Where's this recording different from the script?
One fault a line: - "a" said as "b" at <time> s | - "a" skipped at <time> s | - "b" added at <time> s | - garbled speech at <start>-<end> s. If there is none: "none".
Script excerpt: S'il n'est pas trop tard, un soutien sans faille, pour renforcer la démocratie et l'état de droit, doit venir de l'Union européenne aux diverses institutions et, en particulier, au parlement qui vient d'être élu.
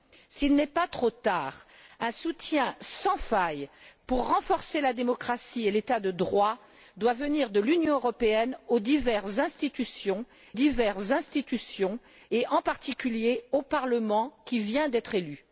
- "diverses institutions" added at 10.5 s